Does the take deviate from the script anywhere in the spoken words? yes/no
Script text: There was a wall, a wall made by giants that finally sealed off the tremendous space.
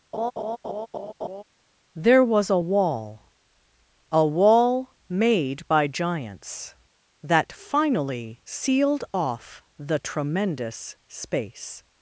no